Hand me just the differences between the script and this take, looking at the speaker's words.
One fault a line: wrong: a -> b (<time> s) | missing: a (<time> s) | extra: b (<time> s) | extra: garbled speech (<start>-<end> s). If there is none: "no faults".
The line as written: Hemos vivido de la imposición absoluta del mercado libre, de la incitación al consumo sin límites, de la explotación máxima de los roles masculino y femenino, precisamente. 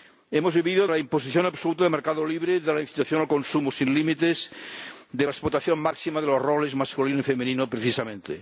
missing: de (0.9 s)